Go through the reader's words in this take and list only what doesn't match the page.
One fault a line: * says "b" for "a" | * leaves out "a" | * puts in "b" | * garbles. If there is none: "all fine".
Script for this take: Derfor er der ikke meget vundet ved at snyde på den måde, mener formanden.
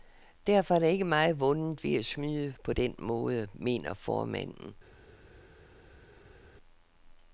all fine